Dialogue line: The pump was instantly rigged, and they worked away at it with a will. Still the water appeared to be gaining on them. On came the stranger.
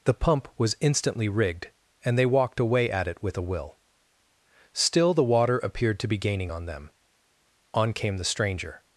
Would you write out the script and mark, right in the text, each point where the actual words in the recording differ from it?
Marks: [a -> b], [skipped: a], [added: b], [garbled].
The pump was instantly rigged, and they [worked -> walked] away at it with a will. Still the water appeared to be gaining on them. On came the stranger.